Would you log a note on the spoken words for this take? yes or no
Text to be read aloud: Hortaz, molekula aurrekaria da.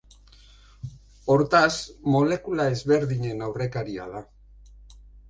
yes